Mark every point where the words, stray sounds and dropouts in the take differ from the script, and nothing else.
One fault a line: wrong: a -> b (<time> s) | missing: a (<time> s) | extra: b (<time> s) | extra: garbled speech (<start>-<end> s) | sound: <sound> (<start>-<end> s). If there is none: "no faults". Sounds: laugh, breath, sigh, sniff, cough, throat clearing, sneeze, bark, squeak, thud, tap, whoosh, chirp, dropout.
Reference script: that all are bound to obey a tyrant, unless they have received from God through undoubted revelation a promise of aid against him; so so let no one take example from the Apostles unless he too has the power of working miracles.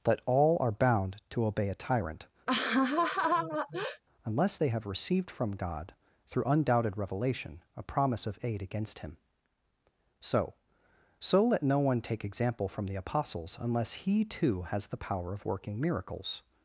sound: laugh (2.5-4.0 s)